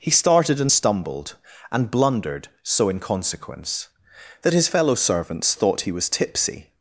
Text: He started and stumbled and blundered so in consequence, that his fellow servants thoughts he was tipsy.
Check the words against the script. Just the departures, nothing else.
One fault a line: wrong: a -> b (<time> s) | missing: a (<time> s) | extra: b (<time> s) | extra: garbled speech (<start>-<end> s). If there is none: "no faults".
wrong: thoughts -> thought (5.5 s)